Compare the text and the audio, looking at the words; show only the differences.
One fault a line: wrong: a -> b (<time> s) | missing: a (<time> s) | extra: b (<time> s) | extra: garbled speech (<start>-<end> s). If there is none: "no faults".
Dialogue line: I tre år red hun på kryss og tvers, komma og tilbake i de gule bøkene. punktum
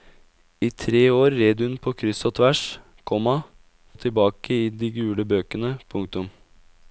no faults